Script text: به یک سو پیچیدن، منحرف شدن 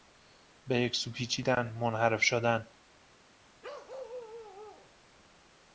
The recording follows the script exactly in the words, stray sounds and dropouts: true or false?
false